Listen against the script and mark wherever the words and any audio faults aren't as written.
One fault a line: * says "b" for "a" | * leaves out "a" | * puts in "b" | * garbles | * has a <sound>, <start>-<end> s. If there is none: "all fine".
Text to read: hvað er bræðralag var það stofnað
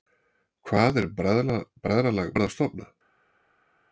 all fine